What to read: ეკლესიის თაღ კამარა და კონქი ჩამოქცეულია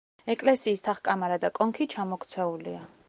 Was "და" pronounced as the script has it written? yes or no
yes